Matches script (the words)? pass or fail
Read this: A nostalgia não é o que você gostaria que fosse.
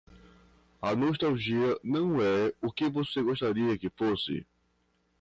pass